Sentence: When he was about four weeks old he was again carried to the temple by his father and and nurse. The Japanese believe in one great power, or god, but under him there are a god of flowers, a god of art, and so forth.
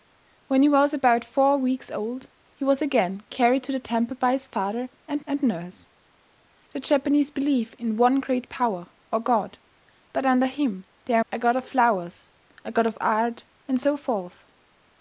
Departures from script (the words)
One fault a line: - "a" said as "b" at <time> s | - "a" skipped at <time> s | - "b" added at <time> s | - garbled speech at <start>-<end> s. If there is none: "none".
none